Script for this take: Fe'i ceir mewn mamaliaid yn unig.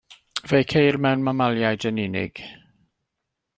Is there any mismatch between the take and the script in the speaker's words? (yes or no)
no